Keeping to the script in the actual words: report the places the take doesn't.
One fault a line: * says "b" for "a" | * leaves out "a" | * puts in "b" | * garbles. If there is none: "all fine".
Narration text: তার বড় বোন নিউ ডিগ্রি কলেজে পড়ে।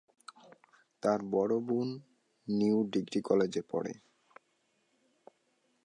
all fine